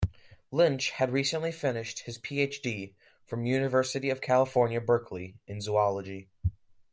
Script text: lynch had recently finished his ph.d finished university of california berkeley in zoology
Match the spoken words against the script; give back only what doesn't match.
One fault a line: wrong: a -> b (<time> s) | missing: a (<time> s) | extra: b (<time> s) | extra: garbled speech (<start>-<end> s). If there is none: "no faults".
wrong: finished -> from (3.3 s)